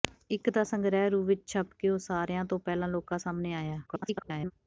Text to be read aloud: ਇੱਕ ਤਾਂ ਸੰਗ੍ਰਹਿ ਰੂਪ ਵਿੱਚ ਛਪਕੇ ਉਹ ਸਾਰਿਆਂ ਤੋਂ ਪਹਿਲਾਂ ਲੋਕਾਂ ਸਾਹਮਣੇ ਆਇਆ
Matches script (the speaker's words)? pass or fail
fail